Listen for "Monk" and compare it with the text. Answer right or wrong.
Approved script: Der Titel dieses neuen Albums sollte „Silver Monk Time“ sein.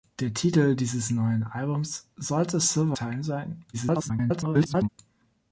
wrong